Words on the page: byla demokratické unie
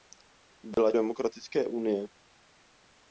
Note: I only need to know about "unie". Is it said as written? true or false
true